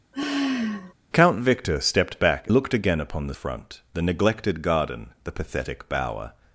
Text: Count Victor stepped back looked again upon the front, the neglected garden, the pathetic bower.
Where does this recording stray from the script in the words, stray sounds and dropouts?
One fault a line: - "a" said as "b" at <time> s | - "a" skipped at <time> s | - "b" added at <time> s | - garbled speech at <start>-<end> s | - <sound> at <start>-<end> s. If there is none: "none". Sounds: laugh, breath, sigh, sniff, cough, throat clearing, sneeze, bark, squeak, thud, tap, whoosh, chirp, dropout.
- sigh at 0.1-0.9 s